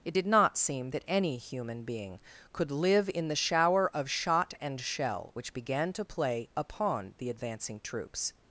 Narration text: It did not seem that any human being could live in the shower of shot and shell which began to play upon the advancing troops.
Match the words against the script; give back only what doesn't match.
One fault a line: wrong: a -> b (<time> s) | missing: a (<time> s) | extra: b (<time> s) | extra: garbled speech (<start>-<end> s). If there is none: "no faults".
no faults